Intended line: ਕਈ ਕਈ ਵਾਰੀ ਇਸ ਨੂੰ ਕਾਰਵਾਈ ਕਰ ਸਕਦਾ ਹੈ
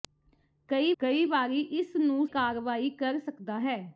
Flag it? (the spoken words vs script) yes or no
no